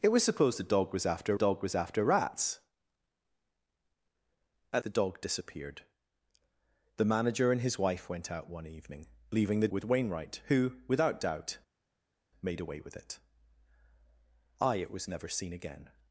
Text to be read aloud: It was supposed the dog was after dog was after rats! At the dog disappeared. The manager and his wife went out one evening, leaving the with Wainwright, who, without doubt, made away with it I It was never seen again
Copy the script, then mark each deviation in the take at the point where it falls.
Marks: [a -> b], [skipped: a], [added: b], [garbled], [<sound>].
It was supposed the dog was after dog was after rats! At the dog disappeared. The manager and his wife went out one evening, leaving the with Wainwright, who, without doubt, made away with it I It was never seen again